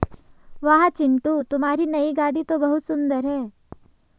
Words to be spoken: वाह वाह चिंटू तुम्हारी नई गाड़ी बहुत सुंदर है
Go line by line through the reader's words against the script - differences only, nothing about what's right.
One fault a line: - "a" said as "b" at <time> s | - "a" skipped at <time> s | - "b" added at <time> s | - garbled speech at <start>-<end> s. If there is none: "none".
- "वाह" skipped at 0.9 s
- "तो" added at 2.4 s